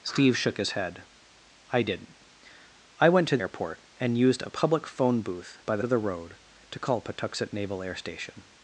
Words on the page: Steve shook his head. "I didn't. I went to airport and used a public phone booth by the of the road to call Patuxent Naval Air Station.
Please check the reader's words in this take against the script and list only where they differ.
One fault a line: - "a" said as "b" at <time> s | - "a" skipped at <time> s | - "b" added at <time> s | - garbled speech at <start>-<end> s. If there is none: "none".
none